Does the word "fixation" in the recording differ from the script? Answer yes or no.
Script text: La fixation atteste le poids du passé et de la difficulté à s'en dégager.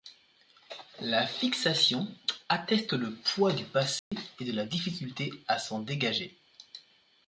no